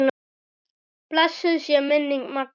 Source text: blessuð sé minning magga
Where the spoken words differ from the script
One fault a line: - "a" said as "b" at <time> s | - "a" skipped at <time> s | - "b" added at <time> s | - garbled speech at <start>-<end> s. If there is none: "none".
none